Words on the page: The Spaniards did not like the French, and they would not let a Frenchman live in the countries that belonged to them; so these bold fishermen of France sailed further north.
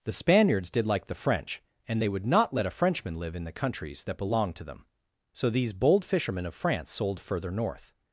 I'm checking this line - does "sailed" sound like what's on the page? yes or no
no